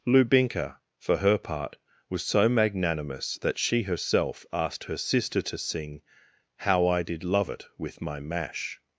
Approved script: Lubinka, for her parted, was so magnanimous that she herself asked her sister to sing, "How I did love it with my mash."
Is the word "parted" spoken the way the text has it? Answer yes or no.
no